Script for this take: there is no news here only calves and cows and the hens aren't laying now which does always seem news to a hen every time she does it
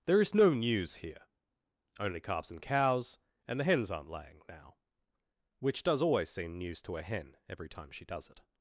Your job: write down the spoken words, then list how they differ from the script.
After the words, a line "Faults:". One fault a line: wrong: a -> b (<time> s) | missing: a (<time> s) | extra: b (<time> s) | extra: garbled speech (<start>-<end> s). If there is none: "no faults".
there is no news here only calves and cows and the hens aren't laying now which does always seem news to a hen every time she does it
Faults:
no faults